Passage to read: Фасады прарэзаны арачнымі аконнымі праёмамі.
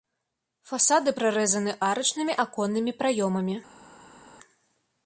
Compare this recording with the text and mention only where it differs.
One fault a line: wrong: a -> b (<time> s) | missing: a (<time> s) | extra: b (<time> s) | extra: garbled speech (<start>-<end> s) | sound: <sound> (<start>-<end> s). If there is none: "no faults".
no faults